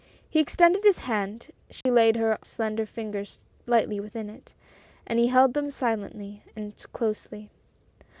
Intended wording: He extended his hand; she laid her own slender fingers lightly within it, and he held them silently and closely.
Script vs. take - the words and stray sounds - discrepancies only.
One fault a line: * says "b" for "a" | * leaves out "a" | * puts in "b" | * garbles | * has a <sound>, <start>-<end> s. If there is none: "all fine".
* has a dropout, 1.8-1.9 s
* leaves out "own"